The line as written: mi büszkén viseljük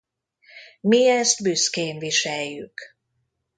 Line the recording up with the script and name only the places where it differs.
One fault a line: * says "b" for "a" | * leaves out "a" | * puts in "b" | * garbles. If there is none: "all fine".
* puts in "ezt"